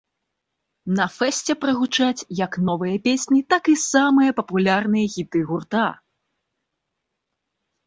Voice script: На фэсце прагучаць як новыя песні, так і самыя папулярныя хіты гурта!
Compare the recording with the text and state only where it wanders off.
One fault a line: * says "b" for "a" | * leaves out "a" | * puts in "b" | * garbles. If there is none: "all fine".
all fine